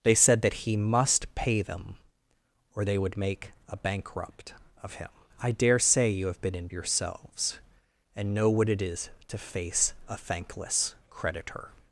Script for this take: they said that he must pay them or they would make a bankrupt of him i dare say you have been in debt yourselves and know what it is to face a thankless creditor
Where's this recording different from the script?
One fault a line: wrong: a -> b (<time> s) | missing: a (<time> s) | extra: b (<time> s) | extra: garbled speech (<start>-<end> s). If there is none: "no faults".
missing: debt (6.7 s)